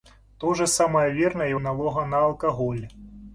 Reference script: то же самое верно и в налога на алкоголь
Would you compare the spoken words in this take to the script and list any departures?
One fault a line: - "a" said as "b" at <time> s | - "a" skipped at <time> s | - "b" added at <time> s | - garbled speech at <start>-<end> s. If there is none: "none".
none